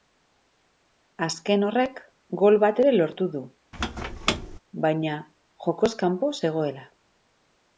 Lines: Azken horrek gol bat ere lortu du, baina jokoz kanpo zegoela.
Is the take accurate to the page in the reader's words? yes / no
yes